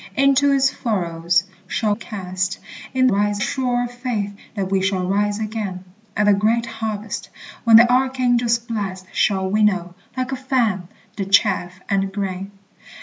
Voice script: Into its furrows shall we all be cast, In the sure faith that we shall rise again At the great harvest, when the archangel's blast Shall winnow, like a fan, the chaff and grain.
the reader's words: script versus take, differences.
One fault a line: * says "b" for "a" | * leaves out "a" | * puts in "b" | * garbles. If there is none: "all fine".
* leaves out "we all be"
* says "rise" for "the"